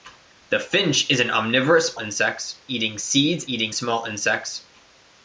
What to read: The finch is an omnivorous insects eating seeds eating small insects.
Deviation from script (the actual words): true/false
false